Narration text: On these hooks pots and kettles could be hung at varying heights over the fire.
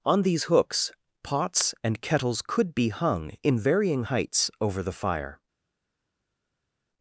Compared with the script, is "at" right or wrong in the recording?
wrong